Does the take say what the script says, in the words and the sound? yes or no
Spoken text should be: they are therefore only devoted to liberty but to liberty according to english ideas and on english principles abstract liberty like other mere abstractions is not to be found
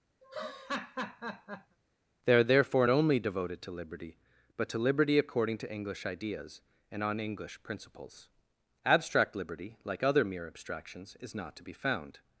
no